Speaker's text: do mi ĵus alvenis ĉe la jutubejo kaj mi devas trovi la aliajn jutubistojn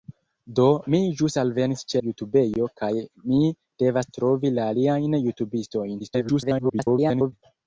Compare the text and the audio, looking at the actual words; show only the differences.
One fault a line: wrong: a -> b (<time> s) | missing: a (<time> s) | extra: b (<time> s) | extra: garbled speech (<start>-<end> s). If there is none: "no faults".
missing: la (2.0 s)
extra: garbled speech (6.0-7.3 s)